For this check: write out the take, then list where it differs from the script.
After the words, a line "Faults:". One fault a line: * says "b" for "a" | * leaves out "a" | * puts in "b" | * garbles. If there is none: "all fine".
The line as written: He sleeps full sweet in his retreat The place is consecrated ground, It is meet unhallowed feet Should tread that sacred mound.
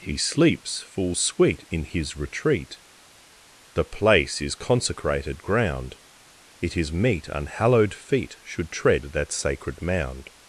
He sleeps full sweet in his retreat The place is consecrated ground, It is meet unhallowed feet Should tread that sacred mound.
Faults:
all fine